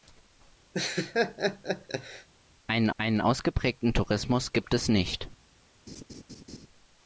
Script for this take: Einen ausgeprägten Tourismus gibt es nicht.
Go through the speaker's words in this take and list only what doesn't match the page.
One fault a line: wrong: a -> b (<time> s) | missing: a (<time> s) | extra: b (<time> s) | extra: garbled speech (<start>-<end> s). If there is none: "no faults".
extra: einen (3.0 s)